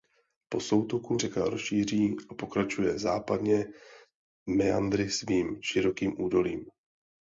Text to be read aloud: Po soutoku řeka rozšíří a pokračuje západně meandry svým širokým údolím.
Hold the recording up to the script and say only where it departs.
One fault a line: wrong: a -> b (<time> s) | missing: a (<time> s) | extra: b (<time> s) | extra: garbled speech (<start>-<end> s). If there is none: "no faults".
no faults